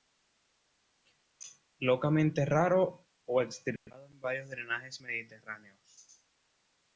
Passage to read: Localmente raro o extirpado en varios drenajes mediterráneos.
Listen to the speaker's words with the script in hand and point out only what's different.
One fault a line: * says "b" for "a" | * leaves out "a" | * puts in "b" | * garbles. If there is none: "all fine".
all fine